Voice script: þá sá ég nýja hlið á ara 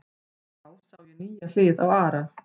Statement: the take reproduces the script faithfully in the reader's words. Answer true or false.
true